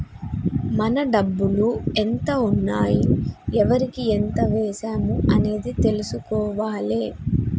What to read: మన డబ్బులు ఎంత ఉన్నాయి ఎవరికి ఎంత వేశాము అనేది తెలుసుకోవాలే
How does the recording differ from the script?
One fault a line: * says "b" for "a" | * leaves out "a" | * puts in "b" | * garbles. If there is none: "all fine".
all fine